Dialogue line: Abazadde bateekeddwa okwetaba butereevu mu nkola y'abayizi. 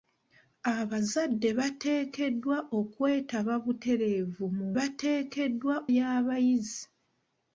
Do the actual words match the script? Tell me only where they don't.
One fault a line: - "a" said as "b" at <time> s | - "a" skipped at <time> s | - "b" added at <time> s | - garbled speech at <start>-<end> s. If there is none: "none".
- "nkola" said as "bateekeddwa" at 4.8 s